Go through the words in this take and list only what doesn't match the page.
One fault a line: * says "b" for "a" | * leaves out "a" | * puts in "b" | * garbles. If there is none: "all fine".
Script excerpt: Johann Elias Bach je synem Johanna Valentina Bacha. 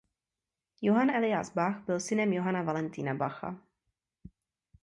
* says "byl" for "je"